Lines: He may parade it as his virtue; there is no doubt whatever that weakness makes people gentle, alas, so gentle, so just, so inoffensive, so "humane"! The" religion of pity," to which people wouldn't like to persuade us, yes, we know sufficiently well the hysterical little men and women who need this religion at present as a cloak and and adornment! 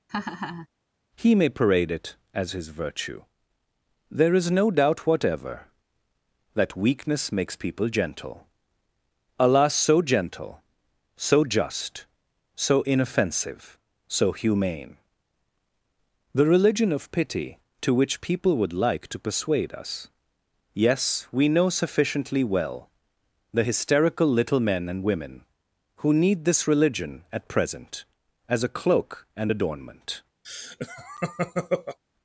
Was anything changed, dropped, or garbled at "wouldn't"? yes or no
yes